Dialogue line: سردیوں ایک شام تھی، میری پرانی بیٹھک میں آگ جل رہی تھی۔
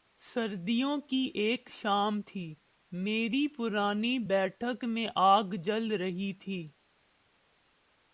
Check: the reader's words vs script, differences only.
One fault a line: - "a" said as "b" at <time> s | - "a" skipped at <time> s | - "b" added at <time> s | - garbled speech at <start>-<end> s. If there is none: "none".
- "کی" added at 1.0 s